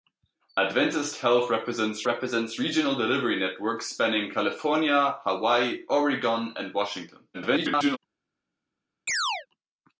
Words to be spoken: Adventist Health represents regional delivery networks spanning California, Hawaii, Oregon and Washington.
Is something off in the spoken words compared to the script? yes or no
yes